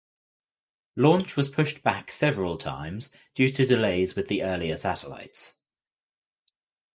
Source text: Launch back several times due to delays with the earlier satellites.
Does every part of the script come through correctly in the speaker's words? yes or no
no